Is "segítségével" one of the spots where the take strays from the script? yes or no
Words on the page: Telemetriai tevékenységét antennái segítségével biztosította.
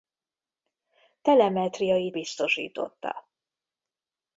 yes